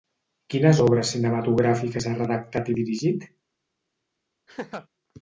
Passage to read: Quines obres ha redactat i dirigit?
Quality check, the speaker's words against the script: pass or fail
fail